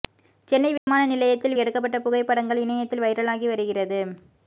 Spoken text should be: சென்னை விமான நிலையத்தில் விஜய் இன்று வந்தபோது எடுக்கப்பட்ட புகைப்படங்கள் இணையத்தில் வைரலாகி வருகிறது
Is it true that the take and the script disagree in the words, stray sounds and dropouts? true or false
true